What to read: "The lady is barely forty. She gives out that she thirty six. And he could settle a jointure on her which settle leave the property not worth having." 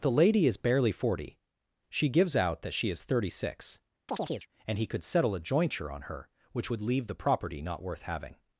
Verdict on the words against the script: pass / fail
fail